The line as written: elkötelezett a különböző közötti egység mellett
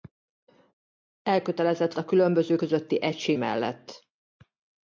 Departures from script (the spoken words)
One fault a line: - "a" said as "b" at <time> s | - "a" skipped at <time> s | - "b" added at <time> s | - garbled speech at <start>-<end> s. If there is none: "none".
none